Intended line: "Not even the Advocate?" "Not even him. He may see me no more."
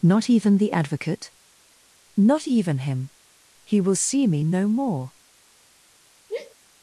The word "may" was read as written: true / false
false